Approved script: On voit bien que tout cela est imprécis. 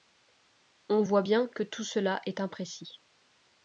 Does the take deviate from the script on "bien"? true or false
false